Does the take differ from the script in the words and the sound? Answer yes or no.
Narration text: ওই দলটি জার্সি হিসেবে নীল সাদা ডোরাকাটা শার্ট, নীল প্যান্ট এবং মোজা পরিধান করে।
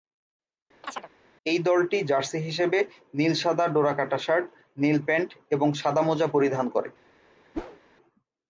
yes